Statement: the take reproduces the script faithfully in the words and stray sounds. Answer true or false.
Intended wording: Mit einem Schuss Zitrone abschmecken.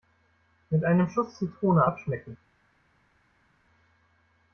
true